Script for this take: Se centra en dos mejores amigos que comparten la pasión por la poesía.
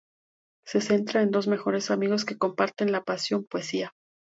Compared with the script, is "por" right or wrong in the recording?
wrong